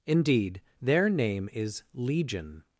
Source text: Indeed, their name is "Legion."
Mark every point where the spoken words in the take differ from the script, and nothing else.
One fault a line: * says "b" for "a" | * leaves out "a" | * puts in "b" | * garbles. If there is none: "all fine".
all fine